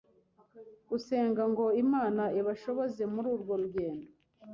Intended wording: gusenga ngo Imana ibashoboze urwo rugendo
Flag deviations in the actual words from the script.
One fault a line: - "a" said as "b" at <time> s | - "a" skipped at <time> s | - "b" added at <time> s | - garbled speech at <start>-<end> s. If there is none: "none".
- "muri" added at 3.1 s